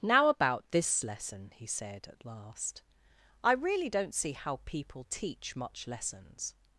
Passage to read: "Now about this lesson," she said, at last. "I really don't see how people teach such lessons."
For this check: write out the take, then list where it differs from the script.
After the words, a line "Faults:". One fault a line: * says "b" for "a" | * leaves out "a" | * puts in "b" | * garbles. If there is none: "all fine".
"Now about this lesson," he said, at last. "I really don't see how people teach much lessons."
Faults:
* says "he" for "she"
* says "much" for "such"